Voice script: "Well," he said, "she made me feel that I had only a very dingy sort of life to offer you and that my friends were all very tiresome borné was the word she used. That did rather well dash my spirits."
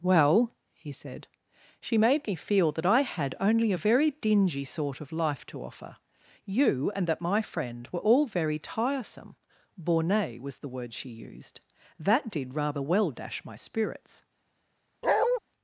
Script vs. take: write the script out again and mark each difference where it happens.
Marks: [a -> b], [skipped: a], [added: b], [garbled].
"Well," he said, "she made me feel that I had only a very dingy sort of life to offer you and that my [friends -> friend] were all very tiresome borné was the word she used. That did rather well dash my spirits."